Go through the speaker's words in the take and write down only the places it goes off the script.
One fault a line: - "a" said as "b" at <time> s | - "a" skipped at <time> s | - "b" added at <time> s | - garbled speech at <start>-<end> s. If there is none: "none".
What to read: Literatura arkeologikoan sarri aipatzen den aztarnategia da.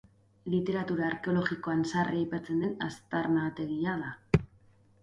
none